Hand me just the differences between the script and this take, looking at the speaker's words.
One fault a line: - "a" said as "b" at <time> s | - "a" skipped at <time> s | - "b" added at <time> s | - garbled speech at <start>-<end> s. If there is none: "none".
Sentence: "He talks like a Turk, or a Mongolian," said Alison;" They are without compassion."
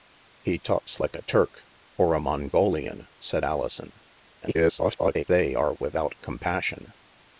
- garbled speech at 4.4-5.2 s